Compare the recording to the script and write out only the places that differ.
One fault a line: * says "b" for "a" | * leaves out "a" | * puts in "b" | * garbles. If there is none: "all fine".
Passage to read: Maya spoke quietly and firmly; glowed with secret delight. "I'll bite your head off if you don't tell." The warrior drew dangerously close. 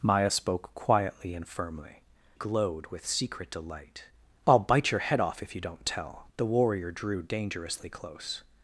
all fine